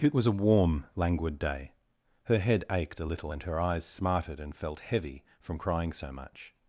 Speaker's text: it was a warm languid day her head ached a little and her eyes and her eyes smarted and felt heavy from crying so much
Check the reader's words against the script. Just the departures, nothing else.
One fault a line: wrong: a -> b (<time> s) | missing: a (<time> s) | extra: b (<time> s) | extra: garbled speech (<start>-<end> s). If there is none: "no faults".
missing: and her eyes (3.8 s)